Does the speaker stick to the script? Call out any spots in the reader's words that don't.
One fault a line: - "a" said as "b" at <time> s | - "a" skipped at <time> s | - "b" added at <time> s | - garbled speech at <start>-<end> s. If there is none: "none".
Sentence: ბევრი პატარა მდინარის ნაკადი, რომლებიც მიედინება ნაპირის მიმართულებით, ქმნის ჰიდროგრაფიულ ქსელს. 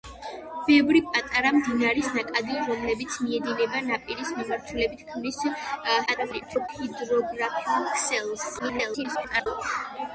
- garbled speech at 6.1-6.7 s
- garbled speech at 8.6-9.5 s